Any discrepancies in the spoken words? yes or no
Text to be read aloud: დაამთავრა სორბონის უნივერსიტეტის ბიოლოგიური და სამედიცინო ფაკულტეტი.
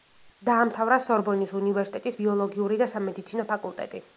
no